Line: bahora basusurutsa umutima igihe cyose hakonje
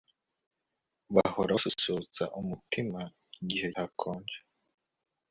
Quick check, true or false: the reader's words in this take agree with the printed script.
false